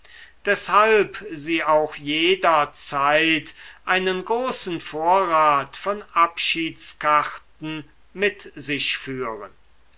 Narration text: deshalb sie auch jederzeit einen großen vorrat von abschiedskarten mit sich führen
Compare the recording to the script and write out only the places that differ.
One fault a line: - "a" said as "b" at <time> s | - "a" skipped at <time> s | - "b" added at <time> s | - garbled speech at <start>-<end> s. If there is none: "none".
none